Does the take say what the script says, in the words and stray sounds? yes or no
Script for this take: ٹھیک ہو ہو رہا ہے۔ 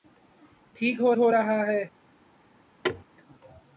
no